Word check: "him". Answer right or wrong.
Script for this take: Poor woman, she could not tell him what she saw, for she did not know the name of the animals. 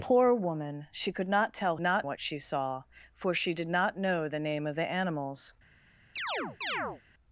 wrong